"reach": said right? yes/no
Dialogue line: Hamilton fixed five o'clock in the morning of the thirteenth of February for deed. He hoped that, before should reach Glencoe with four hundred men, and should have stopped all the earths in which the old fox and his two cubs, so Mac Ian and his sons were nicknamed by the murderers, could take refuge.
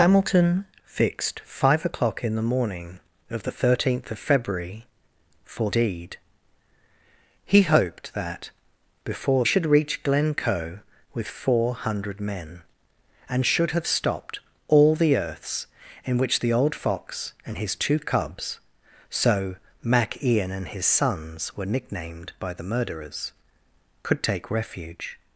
yes